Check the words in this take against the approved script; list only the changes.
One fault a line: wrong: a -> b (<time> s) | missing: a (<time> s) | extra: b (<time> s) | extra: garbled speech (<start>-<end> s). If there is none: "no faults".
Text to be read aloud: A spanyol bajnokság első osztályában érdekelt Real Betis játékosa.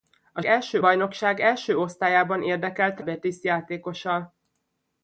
wrong: spanyol -> első (0.4 s)
missing: Real (3.0 s)